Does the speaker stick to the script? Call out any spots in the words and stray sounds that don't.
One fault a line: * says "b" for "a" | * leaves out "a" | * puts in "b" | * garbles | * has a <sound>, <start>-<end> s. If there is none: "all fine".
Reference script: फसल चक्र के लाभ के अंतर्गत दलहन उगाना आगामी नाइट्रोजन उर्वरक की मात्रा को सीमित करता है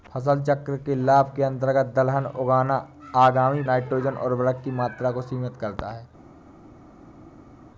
all fine